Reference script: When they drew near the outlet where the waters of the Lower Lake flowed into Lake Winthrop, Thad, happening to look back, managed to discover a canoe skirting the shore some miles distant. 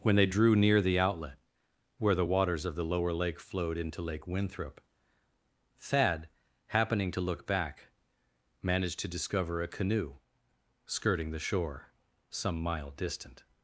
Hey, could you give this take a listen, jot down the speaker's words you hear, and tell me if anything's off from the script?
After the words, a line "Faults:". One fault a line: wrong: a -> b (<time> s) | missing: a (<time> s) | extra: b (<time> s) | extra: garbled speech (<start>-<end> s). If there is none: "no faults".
When they drew near the outlet where the waters of the Lower Lake flowed into Lake Winthrop, Thad, happening to look back, managed to discover a canoe skirting the shore some mile distant.
Faults:
wrong: miles -> mile (12.6 s)